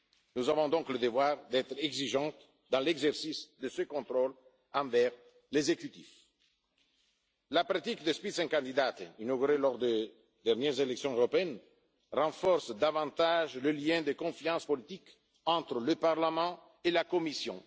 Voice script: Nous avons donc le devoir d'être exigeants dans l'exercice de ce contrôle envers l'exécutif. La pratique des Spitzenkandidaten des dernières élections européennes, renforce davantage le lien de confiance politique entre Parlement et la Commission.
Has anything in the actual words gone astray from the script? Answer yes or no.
yes